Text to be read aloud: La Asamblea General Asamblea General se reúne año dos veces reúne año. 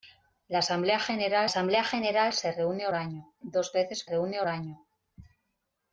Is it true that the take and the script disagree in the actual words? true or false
false